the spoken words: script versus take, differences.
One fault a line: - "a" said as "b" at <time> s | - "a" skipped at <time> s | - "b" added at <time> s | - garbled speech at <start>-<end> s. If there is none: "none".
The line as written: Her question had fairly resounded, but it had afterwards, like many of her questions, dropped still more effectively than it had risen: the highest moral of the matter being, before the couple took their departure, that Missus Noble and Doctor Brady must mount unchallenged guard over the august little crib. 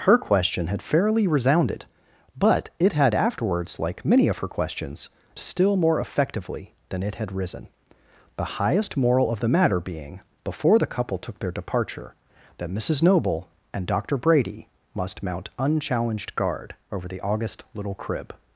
- "dropped" skipped at 5.1 s